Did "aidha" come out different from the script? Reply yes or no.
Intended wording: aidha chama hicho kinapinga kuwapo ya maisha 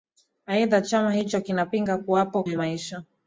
no